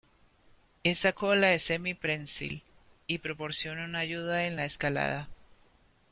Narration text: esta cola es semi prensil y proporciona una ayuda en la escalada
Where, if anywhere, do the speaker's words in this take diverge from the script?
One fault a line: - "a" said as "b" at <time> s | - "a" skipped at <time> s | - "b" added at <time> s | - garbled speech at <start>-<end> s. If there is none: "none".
none